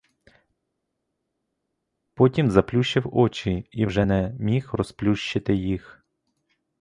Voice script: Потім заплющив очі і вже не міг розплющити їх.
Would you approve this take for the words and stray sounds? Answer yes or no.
yes